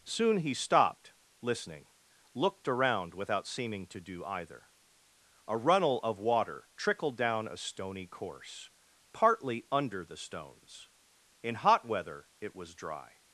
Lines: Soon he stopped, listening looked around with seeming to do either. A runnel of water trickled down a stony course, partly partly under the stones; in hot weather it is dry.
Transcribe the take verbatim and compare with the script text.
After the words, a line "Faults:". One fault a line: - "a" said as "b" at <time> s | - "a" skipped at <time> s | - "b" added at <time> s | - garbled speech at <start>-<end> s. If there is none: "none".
Soon he stopped, listening looked around without seeming to do either. A runnel of water trickled down a stony course, partly under the stones; in hot weather it was dry.
Faults:
- "with" said as "without" at 3.1 s
- "partly" skipped at 9.7 s
- "is" said as "was" at 12.5 s